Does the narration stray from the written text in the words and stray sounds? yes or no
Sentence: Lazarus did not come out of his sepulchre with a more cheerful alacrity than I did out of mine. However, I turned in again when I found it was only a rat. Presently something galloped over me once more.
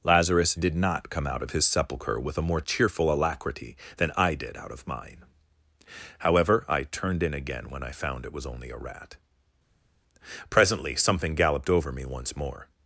no